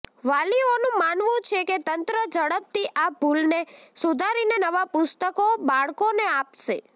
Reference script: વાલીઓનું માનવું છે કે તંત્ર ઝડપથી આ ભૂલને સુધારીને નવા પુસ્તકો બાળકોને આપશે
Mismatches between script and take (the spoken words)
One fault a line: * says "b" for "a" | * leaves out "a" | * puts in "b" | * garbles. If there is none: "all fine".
all fine